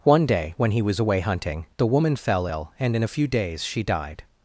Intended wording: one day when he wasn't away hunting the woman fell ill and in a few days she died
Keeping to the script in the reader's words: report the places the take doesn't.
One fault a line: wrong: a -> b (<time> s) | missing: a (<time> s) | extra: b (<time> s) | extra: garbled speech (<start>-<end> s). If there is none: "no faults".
wrong: wasn't -> was (0.8 s)